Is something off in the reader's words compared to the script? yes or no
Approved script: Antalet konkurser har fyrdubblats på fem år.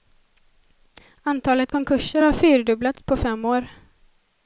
no